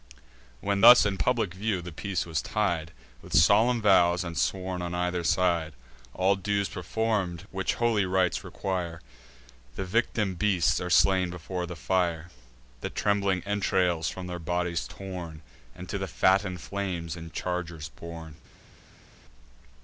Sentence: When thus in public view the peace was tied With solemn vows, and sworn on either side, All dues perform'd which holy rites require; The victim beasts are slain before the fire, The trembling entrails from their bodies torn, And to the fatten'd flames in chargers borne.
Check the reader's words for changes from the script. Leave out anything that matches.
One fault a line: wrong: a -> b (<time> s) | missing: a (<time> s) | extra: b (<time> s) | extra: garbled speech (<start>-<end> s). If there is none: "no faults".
no faults